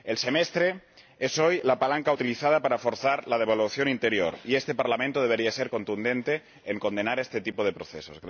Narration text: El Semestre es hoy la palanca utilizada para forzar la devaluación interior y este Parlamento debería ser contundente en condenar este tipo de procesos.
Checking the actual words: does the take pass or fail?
pass